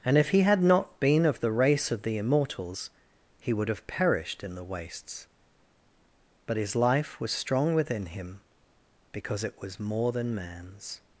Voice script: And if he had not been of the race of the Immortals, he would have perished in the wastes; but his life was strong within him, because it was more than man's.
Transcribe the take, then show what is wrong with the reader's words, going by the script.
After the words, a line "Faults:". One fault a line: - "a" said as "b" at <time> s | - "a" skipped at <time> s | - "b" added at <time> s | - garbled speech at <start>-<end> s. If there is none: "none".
And if he had not been of the race of the Immortals, he would have perished in the wastes; but his life was strong within him, because it was more than man's.
Faults:
none